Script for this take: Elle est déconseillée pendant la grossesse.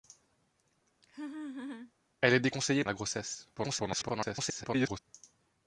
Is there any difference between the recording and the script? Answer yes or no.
yes